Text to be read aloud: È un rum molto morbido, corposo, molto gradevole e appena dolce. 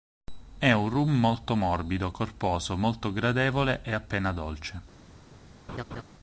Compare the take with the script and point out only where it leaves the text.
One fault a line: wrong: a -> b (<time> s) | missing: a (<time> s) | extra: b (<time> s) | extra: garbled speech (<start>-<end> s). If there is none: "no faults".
no faults